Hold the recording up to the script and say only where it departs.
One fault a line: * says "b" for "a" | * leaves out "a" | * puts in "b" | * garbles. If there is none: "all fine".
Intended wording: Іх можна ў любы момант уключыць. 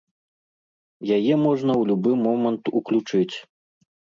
* says "Яе" for "Іх"